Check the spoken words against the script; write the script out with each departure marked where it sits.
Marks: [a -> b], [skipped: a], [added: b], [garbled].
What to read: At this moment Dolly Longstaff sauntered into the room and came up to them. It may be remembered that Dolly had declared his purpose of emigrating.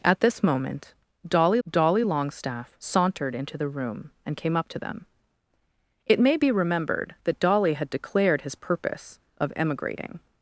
At this moment Dolly [added: Dolly] Longstaff sauntered into the room and came up to them. It may be remembered that Dolly had declared his purpose of emigrating.